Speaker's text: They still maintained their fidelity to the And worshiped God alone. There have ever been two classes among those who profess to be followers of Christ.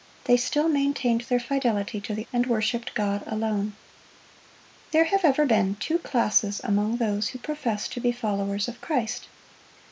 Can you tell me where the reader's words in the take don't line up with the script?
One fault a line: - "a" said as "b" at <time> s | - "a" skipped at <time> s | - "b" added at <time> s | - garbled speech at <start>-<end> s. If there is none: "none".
none